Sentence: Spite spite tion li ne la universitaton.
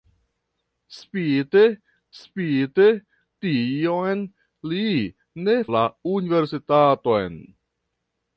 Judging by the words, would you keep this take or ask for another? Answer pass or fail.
pass